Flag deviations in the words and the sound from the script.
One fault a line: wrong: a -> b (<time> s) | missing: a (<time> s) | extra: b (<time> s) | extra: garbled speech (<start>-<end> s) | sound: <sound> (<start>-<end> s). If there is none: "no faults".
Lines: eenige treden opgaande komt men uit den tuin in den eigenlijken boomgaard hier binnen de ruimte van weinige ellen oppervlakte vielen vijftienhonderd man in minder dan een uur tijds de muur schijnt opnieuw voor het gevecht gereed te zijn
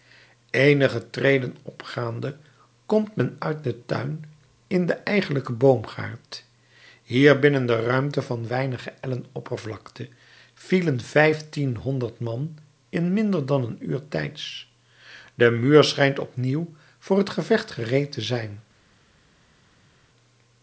no faults